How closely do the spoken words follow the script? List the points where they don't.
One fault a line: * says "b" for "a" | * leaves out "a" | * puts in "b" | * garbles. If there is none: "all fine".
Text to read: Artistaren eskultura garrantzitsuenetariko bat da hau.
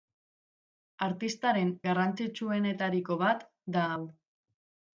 * leaves out "eskultura"